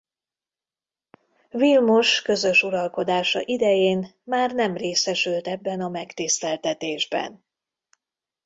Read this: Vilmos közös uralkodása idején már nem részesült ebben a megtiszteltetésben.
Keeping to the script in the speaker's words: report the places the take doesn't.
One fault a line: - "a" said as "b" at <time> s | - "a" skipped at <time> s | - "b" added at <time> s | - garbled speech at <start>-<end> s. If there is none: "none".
none